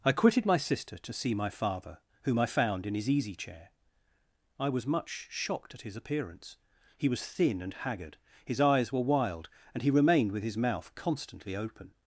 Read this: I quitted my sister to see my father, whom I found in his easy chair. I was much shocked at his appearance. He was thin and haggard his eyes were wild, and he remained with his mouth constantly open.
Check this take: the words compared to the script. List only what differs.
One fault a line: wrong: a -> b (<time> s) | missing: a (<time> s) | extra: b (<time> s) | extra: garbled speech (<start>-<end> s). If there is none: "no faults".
no faults